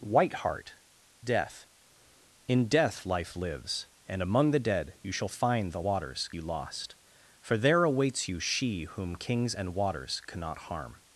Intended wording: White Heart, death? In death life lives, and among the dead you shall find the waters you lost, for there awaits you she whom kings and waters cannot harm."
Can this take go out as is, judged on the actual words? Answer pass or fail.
pass